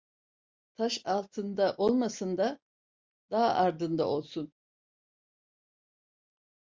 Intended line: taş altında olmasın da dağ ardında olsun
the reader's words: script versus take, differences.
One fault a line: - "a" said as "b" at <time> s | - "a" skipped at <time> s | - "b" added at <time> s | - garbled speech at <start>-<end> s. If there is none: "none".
none